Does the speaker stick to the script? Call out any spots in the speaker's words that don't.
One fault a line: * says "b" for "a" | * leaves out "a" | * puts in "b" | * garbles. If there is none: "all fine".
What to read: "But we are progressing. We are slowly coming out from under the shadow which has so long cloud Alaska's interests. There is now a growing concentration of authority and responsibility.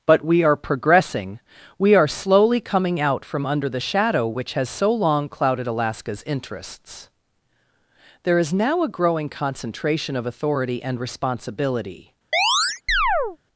* says "clouded" for "cloud"